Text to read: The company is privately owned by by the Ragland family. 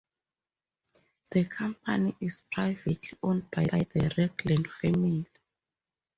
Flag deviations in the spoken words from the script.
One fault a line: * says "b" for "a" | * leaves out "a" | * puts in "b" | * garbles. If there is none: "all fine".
all fine